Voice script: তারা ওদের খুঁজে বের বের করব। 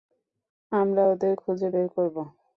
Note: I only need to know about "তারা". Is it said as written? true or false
false